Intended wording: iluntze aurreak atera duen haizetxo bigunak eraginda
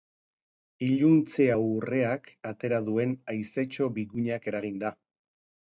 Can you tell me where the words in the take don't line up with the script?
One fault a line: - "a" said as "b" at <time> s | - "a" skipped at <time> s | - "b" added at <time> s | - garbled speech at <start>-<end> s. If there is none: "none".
none